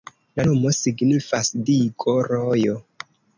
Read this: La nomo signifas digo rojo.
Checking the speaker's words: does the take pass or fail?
pass